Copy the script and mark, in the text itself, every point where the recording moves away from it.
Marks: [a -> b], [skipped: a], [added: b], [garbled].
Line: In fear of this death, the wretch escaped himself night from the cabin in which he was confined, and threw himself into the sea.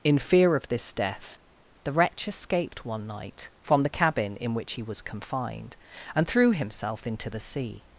In fear of this death, the wretch escaped [himself -> one] night from the cabin in which he was confined, and threw himself into the sea.